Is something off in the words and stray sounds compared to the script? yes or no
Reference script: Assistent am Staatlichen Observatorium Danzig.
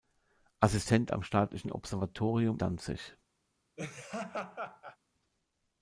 yes